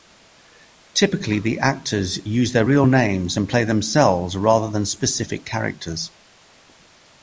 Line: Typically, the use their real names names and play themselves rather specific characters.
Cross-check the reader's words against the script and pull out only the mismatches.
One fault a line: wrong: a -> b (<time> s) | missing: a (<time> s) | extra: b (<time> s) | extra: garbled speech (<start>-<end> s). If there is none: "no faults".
extra: actors (1.6 s)
missing: names (3.4 s)
extra: than (4.7 s)